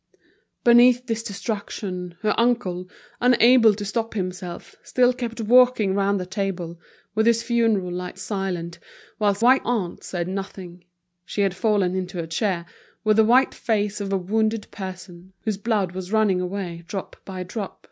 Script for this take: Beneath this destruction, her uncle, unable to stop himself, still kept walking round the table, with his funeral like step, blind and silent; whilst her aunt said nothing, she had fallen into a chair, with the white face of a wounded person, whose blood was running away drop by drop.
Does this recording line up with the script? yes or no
no